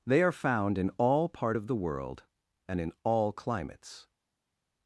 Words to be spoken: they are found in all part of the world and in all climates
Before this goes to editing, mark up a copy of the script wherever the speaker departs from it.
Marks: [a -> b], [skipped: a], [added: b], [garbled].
they are found in all part of the world and in all climates